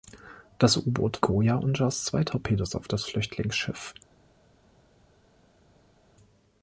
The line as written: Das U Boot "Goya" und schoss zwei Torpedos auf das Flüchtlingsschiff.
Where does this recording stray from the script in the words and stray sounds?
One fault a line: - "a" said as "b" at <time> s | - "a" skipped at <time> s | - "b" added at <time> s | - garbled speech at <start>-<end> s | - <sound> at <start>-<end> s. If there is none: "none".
none